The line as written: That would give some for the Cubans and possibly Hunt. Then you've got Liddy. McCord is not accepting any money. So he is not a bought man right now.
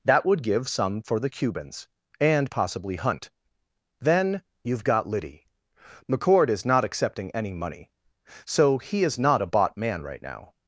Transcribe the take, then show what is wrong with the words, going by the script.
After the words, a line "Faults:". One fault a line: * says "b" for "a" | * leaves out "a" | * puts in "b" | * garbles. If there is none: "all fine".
That would give some for the Cubans and possibly Hunt. Then you've got Liddy. McCord is not accepting any money. So he is not a bought man right now.
Faults:
all fine